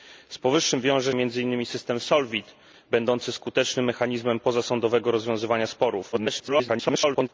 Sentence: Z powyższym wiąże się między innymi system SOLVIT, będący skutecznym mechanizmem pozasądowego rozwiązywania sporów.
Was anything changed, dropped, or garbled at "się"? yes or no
yes